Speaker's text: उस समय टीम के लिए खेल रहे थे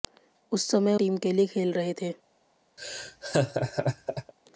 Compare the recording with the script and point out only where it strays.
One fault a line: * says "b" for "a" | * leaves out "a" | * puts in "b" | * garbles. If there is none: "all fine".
all fine